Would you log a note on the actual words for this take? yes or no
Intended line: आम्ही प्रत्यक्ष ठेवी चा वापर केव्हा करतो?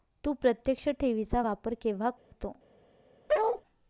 yes